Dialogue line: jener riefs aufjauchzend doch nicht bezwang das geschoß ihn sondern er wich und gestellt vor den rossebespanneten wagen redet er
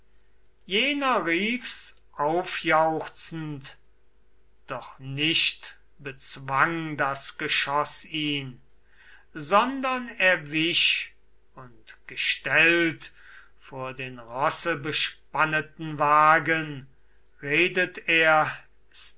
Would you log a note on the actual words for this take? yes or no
no